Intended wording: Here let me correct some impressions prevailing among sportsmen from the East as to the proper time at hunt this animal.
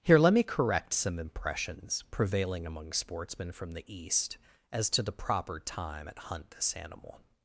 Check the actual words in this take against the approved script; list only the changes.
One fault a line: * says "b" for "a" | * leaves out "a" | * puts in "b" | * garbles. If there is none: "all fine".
all fine